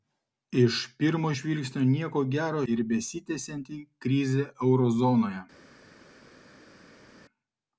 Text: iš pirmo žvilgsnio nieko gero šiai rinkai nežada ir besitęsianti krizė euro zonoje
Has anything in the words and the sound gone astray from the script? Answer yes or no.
yes